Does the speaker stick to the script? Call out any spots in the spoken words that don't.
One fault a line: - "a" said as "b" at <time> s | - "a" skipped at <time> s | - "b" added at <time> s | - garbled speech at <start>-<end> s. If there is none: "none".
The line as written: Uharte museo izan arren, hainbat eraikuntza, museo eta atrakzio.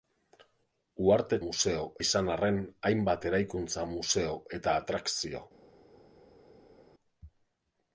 none